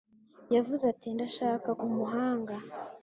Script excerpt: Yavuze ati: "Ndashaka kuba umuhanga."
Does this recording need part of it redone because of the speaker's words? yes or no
yes